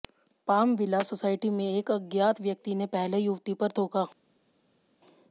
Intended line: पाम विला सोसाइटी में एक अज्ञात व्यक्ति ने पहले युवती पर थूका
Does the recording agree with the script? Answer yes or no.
yes